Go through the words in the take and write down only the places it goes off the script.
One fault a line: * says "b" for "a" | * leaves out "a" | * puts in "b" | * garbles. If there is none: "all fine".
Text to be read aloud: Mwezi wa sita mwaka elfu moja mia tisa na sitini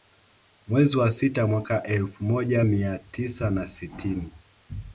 all fine